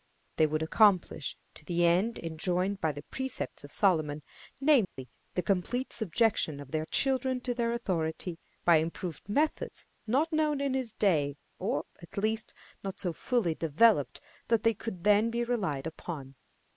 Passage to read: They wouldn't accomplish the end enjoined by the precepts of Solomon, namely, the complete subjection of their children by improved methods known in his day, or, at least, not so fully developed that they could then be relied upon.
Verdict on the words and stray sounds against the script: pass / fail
fail